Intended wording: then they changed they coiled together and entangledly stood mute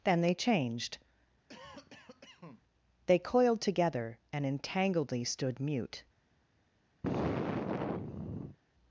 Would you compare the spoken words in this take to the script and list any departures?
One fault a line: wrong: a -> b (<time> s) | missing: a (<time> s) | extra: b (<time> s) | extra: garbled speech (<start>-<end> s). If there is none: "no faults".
no faults